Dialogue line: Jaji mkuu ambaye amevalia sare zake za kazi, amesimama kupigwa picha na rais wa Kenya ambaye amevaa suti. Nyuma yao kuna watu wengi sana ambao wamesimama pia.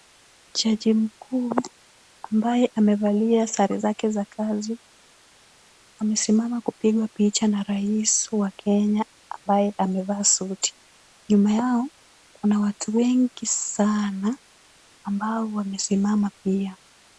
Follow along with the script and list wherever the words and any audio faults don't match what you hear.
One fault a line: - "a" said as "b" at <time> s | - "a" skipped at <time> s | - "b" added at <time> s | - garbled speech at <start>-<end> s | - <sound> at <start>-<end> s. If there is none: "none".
none